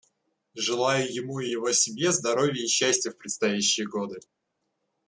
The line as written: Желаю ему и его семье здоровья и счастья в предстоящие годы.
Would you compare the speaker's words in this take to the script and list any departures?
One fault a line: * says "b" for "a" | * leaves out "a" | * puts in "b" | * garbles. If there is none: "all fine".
all fine